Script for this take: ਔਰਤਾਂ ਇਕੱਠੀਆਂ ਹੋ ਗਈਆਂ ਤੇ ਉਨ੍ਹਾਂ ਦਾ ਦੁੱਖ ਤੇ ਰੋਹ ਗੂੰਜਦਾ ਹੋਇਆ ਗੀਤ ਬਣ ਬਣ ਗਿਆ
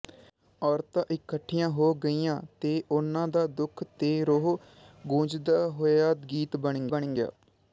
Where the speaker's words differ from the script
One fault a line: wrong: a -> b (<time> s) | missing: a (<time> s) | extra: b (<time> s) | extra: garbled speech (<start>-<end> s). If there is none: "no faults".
no faults